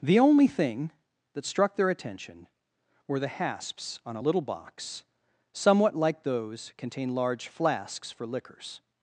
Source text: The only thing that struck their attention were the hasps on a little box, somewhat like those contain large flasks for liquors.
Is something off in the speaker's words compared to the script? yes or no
no